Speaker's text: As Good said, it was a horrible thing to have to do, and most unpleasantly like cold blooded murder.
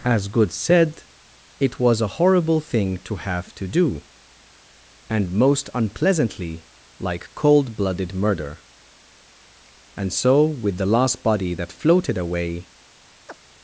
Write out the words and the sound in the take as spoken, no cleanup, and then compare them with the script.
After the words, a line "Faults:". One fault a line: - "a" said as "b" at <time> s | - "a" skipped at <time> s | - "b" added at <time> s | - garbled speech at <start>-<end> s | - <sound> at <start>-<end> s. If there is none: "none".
As Good said, it was a horrible thing to have to do, and most unpleasantly like cold blooded murder. And so with the last body that floated away
Faults:
- "And so with the last body that floated away" added at 9.9 s
- chirp at 13.3-13.4 s